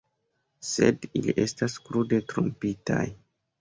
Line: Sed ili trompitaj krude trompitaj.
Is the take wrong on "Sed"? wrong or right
right